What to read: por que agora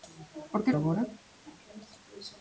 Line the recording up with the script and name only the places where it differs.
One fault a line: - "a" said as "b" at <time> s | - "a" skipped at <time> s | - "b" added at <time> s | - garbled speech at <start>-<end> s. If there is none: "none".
none